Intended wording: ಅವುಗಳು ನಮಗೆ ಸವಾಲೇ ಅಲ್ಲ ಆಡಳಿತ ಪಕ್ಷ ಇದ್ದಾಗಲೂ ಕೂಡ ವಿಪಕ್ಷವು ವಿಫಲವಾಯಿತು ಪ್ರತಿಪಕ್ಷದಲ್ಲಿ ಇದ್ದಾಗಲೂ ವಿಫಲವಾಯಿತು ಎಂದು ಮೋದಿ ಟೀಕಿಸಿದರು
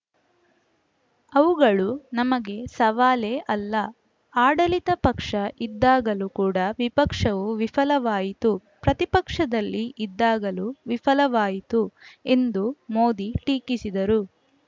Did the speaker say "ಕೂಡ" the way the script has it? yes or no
yes